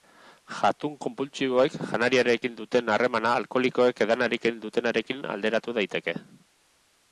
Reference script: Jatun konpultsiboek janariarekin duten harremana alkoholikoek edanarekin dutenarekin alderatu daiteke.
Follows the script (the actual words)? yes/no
yes